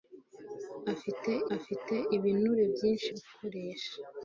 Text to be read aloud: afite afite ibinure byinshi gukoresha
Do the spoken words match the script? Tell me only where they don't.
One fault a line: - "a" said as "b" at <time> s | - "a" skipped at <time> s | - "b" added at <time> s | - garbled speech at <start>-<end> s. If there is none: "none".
none